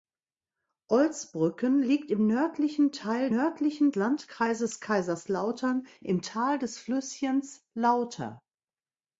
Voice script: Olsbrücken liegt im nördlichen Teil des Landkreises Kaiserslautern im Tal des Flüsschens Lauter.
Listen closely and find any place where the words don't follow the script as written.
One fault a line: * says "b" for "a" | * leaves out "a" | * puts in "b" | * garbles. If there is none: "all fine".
* says "nördlichen" for "des"